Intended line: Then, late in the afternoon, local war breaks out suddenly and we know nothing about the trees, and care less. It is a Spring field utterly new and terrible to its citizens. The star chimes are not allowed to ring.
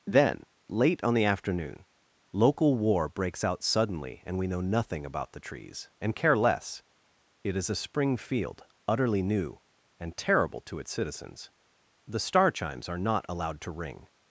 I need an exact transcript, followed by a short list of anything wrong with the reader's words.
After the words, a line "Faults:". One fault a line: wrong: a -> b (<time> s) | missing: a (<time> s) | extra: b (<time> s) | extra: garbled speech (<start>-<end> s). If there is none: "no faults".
Then, late on the afternoon, local war breaks out suddenly and we know nothing about the trees, and care less. It is a Spring field utterly new and terrible to its citizens. The star chimes are not allowed to ring.
Faults:
wrong: in -> on (1.0 s)